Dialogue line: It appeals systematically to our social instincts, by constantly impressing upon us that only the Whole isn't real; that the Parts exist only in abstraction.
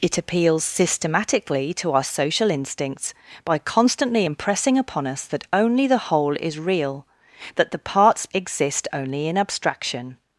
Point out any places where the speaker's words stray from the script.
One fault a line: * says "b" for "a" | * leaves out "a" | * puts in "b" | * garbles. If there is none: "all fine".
* says "is" for "isn't"